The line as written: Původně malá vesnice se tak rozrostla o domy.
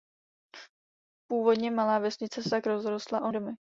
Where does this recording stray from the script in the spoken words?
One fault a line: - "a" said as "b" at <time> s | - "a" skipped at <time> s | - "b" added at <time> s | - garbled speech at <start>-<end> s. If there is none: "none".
none